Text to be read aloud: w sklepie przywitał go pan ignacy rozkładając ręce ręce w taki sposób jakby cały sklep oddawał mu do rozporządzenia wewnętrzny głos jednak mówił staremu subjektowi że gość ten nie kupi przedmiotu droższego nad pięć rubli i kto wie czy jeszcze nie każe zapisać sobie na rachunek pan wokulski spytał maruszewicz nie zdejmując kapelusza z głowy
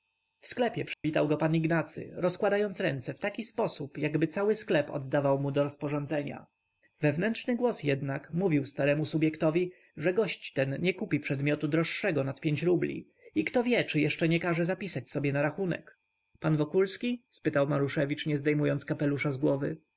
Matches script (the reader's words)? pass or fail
fail